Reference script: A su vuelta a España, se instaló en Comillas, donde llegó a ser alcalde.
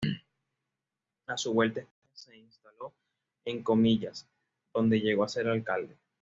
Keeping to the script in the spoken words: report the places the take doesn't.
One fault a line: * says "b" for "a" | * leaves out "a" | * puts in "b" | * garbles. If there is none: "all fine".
all fine